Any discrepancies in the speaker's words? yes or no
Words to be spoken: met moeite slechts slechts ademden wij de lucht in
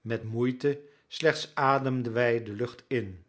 yes